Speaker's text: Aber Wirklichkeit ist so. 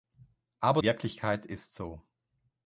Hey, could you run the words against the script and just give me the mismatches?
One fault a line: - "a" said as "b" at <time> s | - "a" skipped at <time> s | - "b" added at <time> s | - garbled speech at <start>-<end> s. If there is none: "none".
none